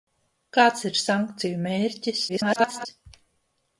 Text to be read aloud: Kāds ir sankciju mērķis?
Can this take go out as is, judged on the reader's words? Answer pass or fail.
fail